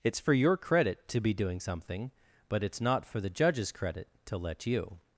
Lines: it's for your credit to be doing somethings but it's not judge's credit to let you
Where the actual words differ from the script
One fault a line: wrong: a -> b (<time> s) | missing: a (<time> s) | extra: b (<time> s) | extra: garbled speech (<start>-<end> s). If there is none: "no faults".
wrong: somethings -> something (1.6 s)
extra: for the (3.0 s)